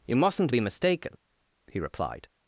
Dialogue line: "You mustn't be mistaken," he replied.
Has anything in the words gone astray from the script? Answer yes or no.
no